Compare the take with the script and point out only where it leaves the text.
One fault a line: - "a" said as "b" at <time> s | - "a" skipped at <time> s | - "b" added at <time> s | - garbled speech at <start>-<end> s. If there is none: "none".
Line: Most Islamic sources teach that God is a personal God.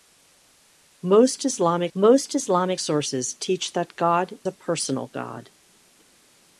- "most Islamic" added at 2.0 s
- "is" skipped at 4.4 s